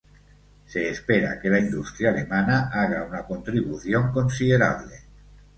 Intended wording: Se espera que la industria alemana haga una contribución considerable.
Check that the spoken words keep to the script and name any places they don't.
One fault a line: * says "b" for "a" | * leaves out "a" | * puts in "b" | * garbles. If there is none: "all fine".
all fine